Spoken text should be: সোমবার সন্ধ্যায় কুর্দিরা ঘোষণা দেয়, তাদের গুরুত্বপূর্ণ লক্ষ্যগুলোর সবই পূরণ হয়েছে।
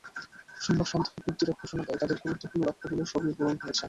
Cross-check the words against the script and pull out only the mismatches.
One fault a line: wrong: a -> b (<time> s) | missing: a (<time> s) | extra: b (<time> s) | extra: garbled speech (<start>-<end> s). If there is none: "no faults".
no faults